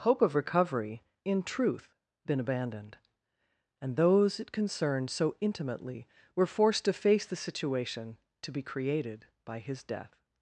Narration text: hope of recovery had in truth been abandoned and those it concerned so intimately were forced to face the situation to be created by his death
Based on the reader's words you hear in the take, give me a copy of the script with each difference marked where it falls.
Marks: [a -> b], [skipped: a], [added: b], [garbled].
hope of recovery [skipped: had] in truth been abandoned and those it concerned so intimately were forced to face the situation to be created by his death